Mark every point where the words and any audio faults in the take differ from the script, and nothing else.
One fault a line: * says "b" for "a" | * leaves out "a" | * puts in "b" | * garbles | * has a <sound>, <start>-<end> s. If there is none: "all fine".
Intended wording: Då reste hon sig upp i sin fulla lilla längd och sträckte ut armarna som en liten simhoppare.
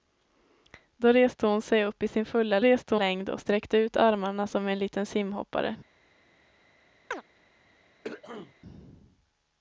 * says "reste" for "lilla"
* has a chirp, 7.1-7.2 s
* has a throat clearing, 8.0-8.5 s